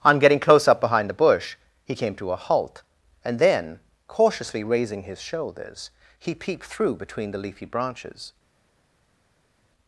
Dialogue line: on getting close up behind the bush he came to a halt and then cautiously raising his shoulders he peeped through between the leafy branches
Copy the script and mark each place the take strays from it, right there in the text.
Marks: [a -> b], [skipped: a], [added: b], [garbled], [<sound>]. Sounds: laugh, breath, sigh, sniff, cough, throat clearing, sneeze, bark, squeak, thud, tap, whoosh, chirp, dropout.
on getting close up behind the bush he came to a halt and then cautiously raising his shoulders he peeped through between the leafy branches